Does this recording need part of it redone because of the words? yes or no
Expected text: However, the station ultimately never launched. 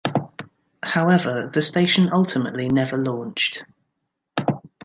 no